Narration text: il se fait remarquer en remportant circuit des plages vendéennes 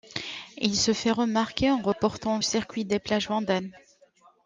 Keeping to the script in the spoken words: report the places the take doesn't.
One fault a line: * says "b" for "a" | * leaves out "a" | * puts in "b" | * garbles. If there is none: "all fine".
all fine